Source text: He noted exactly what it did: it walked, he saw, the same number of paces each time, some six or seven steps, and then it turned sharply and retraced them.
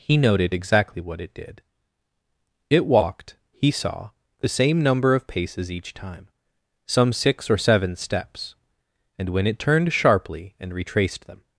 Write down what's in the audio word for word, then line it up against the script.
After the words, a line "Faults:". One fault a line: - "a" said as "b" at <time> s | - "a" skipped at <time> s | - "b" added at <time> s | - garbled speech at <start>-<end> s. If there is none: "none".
He noted exactly what it did: it walked, he saw, the same number of paces each time, some six or seven steps, and when it turned sharply and retraced them.
Faults:
- "then" said as "when" at 9.3 s